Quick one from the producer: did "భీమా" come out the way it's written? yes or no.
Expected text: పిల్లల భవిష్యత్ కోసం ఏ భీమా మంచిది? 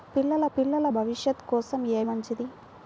no